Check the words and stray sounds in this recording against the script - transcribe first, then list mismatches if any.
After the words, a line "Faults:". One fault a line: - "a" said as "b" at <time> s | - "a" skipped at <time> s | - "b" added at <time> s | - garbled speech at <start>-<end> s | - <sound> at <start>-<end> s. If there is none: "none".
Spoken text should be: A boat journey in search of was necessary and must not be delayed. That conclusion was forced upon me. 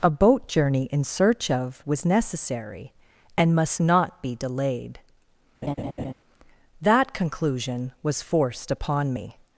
A boat journey in search of was necessary and must not be delayed. That conclusion was forced upon me.
Faults:
- laugh at 5.6-6.1 s